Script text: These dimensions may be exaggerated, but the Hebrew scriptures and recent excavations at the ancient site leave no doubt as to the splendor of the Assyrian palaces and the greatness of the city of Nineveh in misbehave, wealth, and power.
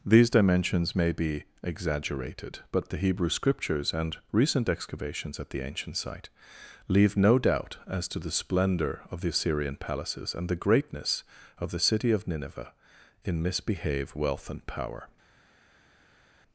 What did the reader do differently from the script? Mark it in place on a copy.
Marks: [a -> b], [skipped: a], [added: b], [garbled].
These dimensions may be exaggerated, but the Hebrew scriptures and recent excavations at the ancient site leave no doubt as to the splendor of the Assyrian palaces and the greatness of the city of Nineveh in misbehave, wealth, and power.